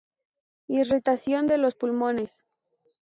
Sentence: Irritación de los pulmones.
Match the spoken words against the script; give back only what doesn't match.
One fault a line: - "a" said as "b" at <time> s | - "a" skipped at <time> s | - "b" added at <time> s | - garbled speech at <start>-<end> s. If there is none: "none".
none